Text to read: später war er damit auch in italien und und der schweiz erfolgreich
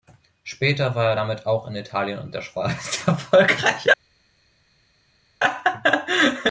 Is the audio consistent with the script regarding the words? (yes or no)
no